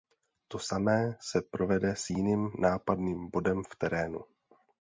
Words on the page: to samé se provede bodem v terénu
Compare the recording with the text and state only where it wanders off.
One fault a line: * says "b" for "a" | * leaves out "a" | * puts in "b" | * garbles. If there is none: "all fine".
* puts in "s jiným nápadným"